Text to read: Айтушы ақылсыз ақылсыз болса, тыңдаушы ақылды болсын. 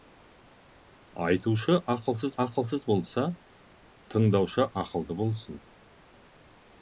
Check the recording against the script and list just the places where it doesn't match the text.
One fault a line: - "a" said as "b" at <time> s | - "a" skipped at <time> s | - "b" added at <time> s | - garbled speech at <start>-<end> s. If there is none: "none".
none